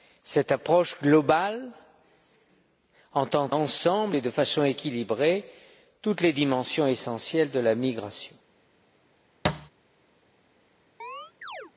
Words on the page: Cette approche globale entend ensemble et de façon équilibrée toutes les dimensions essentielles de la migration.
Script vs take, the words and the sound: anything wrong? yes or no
yes